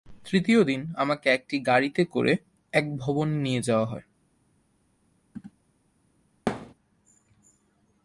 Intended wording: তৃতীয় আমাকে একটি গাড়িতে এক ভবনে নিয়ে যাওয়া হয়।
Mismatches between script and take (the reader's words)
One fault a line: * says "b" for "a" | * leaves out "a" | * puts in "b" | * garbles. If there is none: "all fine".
* puts in "দিন"
* puts in "করে"